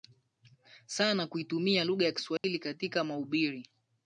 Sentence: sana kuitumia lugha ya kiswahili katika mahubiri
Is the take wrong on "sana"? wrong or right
right